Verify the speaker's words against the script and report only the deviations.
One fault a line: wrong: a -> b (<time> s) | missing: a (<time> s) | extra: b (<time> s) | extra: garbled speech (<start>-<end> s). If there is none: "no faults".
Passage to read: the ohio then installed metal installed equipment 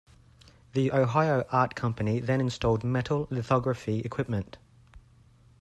extra: art company (1.5 s)
wrong: installed -> lithography (3.3 s)